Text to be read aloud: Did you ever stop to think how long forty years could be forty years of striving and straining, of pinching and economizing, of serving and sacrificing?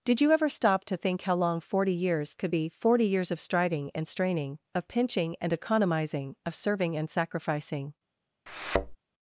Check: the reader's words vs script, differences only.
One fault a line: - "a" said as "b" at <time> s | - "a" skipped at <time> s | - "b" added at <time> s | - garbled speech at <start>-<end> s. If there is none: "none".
none